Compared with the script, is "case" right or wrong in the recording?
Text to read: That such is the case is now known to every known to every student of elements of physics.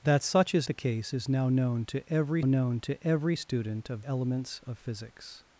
right